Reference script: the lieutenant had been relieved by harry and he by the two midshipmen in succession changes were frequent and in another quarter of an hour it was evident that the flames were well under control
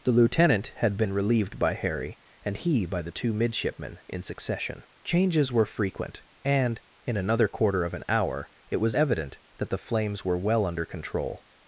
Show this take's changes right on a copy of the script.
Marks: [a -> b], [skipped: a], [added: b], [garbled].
the lieutenant had been relieved by harry and he by the two midshipmen in succession changes were frequent and in another quarter of an hour it was evident that the flames were well under control